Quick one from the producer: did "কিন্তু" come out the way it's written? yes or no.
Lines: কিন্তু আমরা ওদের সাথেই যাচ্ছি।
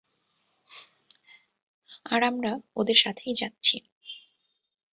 no